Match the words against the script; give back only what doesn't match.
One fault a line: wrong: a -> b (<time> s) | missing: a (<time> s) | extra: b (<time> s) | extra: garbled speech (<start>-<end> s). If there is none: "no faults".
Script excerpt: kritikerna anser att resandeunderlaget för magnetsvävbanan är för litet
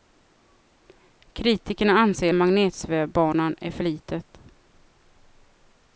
missing: att resandeunderlaget för (2.3 s)